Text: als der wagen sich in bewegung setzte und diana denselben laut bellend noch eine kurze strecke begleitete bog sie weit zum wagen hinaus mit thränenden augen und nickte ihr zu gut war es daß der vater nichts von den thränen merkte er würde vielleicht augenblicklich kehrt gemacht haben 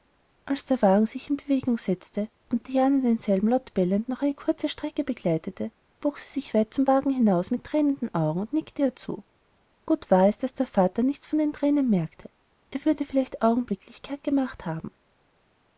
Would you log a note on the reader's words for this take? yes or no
yes